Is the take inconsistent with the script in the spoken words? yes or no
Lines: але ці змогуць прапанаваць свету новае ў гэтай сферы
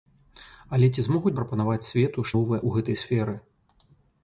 no